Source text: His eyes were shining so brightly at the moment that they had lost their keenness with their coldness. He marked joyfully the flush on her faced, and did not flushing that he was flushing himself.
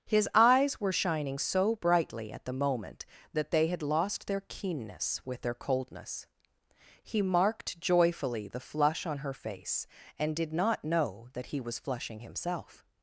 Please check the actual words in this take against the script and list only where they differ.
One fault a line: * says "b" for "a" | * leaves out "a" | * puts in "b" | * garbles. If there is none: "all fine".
* says "face" for "faced"
* says "know" for "flushing"